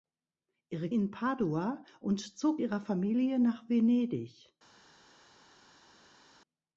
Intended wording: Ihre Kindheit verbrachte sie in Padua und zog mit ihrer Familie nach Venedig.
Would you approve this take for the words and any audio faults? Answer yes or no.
no